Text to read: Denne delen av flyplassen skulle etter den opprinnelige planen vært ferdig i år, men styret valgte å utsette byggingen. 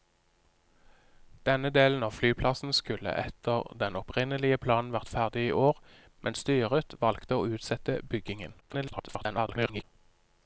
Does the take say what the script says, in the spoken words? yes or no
no